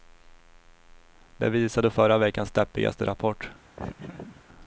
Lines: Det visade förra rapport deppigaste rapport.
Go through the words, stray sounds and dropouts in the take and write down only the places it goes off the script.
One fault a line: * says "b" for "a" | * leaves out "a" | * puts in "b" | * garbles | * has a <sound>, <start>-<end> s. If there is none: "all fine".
* says "veckans" for "rapport"
* has a laugh, 3.8-4.4 s